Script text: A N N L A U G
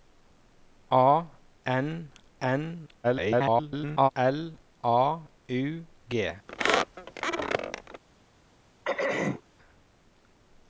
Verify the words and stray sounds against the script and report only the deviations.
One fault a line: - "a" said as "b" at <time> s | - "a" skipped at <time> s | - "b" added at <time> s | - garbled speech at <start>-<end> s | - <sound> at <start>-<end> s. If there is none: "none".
- garbled speech at 3.0-4.1 s
- squeak at 6.5-8.0 s
- throat clearing at 8.8-9.4 s